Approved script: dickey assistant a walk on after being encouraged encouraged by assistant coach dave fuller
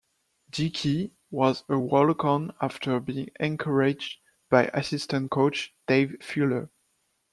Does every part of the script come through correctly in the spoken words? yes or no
no